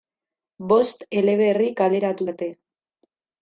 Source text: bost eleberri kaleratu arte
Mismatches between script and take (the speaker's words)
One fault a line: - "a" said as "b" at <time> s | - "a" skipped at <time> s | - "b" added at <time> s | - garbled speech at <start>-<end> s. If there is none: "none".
none